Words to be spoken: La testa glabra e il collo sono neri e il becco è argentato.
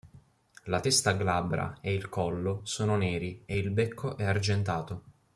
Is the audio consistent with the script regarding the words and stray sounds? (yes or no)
yes